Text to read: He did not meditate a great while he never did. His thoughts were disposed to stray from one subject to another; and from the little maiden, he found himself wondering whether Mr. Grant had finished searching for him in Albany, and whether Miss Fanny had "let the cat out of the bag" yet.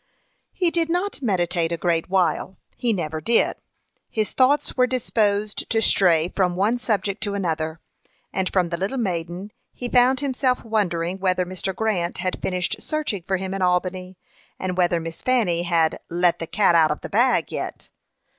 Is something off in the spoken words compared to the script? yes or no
no